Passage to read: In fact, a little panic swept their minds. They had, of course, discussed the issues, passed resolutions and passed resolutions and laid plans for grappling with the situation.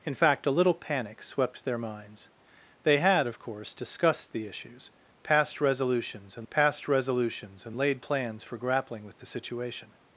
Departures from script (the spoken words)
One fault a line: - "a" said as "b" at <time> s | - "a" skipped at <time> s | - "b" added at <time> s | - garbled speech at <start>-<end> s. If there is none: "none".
none